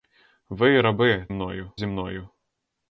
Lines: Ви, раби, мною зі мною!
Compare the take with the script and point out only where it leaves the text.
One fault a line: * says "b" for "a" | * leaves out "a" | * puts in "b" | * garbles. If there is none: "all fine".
all fine